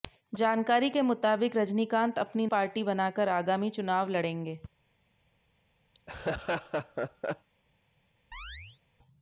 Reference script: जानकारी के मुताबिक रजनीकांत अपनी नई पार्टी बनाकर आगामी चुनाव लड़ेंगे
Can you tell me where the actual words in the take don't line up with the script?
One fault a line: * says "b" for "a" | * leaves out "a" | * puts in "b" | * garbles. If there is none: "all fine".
* leaves out "नई"